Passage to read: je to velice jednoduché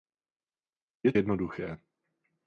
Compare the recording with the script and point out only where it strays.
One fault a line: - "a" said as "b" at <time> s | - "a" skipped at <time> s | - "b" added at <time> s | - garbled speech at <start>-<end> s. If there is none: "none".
- "to velice" skipped at 1.1 s